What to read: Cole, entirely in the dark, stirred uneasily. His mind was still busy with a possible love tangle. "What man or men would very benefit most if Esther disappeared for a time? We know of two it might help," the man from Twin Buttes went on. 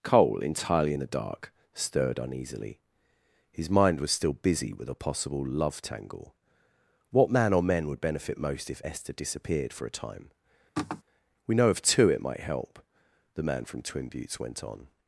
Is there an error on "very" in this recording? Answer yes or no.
yes